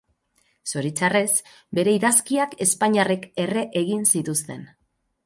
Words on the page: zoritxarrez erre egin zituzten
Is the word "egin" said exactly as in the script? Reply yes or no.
yes